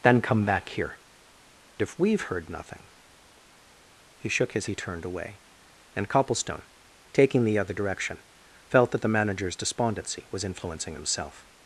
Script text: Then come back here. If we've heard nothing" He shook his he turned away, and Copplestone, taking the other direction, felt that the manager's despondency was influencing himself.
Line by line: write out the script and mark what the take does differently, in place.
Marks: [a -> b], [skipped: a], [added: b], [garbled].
Then come back here. If we've heard nothing" He shook his he turned away, and Copplestone, taking the other direction, felt that the manager's despondency was influencing himself.